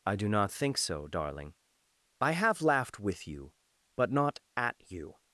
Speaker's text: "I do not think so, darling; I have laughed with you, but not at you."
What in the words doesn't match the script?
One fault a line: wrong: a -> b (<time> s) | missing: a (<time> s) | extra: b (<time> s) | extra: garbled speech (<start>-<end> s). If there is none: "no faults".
no faults